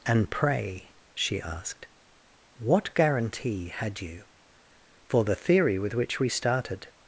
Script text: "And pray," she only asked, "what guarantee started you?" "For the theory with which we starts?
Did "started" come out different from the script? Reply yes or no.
yes